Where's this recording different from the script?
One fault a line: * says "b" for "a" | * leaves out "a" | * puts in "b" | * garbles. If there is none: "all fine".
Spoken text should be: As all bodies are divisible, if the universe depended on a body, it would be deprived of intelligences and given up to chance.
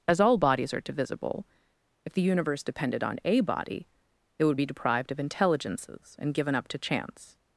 all fine